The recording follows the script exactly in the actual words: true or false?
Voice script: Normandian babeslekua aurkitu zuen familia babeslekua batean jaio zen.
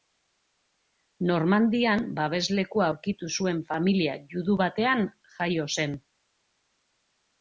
false